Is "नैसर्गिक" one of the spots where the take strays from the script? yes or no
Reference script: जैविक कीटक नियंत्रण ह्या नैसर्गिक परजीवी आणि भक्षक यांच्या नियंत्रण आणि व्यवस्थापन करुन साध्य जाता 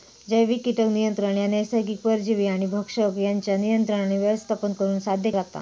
no